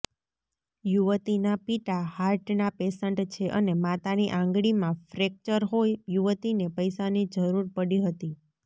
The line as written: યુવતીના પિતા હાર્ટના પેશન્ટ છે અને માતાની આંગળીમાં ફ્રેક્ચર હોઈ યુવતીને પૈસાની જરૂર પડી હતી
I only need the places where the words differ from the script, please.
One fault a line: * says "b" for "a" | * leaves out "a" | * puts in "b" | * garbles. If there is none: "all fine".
all fine